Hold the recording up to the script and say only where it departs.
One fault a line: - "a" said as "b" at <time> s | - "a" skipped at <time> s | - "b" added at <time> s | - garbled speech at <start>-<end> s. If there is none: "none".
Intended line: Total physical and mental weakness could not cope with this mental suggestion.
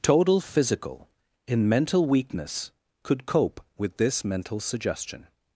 - "and" said as "in" at 1.5 s
- "not" skipped at 3.3 s